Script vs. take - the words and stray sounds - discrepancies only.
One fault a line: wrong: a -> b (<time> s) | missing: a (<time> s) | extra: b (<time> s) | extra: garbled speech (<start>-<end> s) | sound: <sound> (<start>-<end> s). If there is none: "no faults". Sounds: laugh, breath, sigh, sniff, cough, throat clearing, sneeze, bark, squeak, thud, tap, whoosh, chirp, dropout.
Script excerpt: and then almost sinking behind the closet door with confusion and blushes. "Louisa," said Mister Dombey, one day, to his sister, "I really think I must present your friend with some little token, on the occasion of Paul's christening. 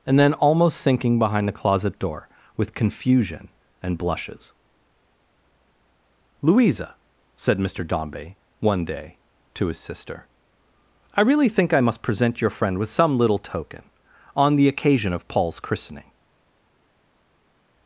no faults